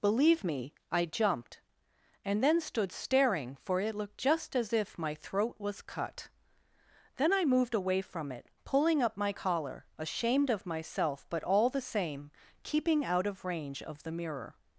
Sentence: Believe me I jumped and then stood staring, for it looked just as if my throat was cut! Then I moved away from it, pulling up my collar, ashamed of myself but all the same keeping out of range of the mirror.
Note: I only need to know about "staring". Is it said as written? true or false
true